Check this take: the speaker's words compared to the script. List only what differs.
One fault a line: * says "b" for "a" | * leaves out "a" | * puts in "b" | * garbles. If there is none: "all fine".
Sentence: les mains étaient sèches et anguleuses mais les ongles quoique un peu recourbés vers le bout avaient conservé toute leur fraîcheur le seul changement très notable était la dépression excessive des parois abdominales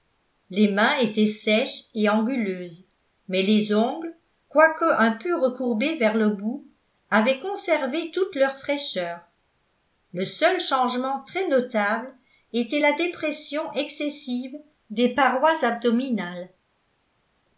all fine